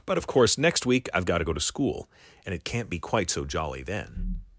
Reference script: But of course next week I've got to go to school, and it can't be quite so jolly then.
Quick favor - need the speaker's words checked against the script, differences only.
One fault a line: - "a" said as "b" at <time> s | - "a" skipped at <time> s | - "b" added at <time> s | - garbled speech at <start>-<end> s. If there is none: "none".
none